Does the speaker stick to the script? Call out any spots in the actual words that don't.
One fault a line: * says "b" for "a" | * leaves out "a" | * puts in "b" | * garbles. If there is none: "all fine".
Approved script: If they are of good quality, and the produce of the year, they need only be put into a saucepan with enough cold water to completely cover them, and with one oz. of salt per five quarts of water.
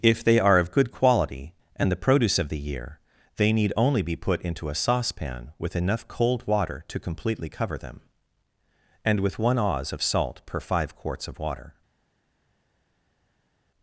all fine